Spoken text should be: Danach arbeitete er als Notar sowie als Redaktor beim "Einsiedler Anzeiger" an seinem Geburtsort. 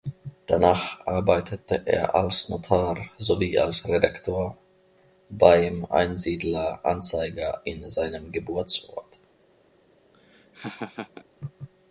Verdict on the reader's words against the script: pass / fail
fail